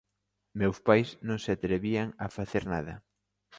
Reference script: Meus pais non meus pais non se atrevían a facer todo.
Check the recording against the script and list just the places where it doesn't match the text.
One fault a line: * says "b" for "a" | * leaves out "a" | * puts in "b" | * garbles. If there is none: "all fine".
* leaves out "meus pais non"
* says "nada" for "todo"